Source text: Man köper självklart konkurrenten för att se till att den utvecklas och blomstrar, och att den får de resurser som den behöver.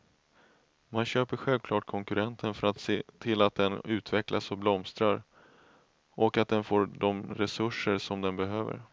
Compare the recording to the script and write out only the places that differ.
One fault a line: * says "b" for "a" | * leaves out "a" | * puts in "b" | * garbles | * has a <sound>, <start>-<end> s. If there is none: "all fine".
all fine